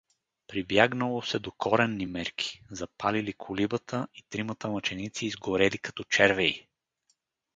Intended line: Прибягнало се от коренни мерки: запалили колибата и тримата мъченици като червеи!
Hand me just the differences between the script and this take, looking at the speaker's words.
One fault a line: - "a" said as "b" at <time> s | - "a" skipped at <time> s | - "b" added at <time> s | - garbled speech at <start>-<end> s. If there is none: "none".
- "от" said as "до" at 1.4 s
- "изгорели" added at 5.3 s